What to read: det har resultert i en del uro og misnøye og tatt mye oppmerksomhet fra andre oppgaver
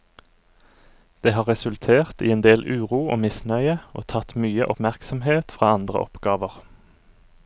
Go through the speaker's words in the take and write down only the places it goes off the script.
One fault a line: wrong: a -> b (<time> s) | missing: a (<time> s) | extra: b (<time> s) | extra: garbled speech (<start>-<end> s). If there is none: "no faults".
no faults